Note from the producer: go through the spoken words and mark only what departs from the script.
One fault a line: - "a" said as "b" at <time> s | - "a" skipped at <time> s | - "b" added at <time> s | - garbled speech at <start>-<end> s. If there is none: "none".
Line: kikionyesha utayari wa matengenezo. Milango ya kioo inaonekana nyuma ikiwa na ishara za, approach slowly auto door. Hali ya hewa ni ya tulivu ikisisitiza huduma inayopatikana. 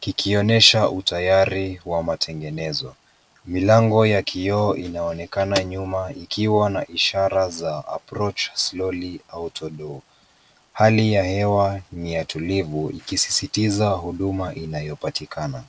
none